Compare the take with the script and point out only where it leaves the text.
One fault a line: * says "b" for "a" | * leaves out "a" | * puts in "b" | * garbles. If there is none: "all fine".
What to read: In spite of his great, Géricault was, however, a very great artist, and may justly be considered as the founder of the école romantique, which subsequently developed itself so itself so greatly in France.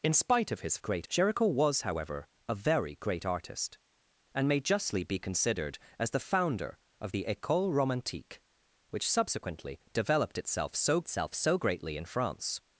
all fine